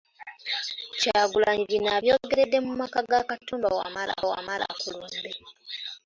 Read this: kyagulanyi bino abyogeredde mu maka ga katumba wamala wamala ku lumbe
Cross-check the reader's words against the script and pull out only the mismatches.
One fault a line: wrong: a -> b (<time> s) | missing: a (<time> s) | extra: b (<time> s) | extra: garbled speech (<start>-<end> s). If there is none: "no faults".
no faults